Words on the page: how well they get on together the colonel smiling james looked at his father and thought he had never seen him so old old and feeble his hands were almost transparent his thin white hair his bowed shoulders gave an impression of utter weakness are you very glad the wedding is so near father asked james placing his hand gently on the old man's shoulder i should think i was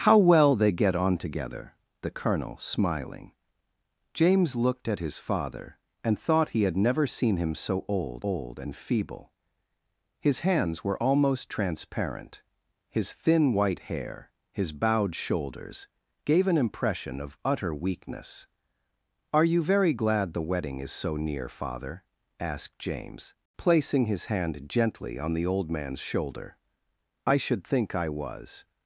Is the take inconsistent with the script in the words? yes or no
no